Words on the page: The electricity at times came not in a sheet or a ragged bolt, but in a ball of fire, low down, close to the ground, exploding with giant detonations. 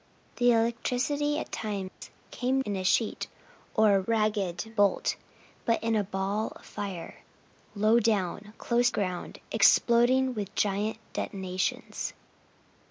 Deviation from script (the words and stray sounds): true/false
true